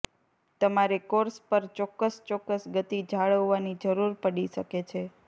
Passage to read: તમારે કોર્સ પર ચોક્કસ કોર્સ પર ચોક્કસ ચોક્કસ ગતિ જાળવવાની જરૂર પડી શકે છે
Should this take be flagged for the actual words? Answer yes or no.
yes